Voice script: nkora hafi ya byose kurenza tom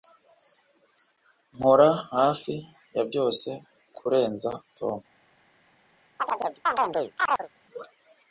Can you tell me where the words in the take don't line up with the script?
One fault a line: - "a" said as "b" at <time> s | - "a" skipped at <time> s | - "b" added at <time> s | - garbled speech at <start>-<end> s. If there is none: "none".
none